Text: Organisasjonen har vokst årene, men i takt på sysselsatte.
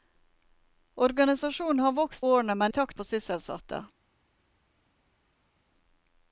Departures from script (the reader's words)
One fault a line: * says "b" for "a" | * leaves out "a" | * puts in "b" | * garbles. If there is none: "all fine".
all fine